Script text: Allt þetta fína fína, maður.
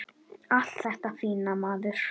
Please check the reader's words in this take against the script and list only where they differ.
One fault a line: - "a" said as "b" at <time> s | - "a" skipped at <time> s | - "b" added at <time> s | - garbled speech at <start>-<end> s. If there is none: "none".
- "fína" skipped at 1.6 s